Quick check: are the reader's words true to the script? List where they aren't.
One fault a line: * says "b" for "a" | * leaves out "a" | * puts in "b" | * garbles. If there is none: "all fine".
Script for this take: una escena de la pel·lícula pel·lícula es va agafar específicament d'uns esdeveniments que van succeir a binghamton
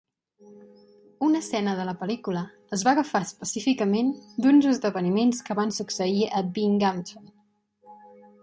* leaves out "pel·lícula"